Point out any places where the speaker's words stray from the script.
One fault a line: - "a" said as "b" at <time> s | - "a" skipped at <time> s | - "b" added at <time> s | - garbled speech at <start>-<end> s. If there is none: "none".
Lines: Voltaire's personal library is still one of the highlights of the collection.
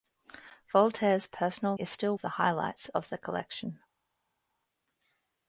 - "library" skipped at 1.8 s
- "one" skipped at 2.2 s